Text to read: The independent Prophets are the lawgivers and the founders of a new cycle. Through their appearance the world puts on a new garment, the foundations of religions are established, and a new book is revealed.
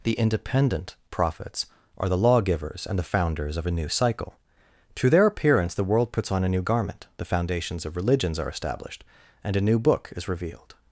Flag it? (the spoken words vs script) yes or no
no